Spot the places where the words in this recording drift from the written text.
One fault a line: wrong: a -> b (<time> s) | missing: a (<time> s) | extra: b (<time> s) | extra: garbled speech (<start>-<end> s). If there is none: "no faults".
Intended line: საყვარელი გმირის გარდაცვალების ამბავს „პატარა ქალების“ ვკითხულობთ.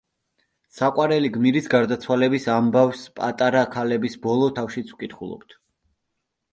extra: ბოლო თავშიც (4.3 s)